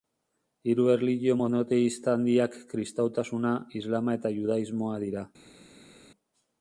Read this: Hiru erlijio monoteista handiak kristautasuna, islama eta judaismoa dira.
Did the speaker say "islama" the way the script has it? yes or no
yes